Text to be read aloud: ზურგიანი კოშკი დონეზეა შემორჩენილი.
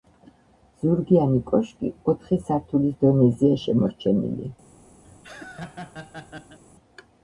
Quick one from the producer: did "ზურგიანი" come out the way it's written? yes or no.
yes